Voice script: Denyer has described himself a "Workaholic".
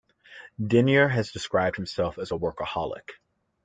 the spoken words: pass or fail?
fail